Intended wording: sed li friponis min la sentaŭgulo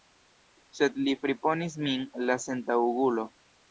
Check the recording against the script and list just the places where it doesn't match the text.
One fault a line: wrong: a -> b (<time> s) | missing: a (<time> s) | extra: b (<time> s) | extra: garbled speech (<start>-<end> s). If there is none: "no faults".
no faults